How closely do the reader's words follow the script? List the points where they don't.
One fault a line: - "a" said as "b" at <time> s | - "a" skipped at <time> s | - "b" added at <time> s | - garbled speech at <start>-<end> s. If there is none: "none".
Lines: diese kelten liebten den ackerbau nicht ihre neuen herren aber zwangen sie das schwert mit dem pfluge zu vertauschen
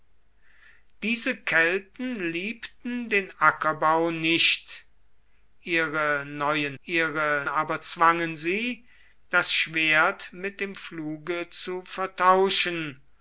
- "herren" said as "ihre" at 6.8 s